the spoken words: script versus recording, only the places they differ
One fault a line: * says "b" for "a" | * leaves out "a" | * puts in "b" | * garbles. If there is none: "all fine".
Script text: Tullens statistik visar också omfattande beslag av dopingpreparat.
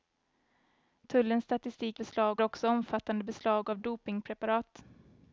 * says "beslag" for "visar"